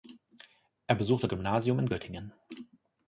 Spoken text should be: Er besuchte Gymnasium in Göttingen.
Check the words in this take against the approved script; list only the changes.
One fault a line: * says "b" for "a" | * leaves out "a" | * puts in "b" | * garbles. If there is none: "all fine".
all fine